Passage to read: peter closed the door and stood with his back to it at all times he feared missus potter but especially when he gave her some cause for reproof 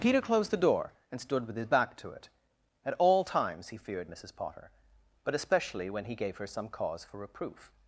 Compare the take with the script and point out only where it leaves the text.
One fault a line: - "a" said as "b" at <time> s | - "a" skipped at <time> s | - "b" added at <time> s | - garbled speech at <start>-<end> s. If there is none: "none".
none